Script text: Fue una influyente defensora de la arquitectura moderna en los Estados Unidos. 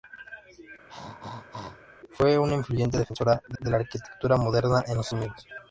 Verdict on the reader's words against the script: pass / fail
fail